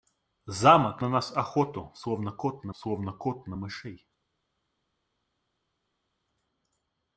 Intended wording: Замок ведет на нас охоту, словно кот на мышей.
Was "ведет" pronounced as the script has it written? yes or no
no